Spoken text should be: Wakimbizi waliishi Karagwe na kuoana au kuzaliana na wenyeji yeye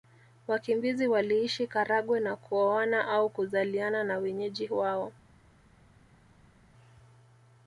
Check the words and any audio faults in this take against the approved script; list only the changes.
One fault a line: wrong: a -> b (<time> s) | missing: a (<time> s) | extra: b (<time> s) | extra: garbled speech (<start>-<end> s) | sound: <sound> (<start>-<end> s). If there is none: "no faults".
wrong: yeye -> wao (4.7 s)